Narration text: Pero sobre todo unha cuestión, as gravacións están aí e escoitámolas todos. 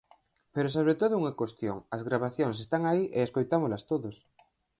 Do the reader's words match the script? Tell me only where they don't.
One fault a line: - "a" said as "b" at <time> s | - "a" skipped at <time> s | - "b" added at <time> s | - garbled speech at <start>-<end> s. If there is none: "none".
none